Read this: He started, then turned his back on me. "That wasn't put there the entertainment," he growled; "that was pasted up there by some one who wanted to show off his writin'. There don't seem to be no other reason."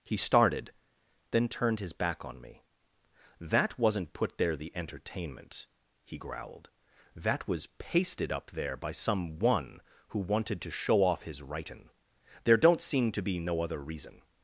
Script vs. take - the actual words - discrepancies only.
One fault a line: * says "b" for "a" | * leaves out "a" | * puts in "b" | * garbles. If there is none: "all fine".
all fine